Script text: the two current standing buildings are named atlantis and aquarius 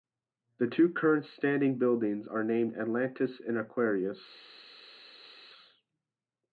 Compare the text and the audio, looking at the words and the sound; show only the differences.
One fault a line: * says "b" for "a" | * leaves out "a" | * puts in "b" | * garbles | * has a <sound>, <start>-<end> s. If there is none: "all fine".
all fine